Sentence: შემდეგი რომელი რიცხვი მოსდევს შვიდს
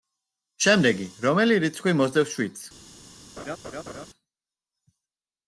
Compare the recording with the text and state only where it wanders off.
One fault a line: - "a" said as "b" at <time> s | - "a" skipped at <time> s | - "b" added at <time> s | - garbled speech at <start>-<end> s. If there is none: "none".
none